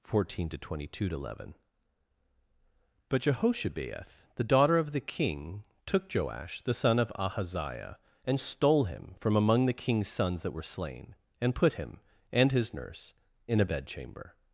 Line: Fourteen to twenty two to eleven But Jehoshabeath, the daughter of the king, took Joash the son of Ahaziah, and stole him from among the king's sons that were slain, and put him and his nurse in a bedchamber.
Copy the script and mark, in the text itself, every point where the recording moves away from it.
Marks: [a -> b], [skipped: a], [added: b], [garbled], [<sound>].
Fourteen to twenty two to eleven But Jehoshabeath, the daughter of the king, took Joash the son of Ahaziah, and stole him from among the king's sons that were slain, and put him and his nurse in a bedchamber.